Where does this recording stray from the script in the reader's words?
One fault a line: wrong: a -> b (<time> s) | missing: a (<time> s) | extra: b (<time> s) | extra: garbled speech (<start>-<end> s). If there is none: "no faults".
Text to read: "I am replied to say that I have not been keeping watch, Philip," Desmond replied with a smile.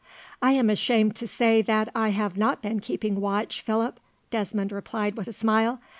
wrong: replied -> ashamed (0.7 s)